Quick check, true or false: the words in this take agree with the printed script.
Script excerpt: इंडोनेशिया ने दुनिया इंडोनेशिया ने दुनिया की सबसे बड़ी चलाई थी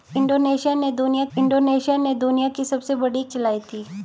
true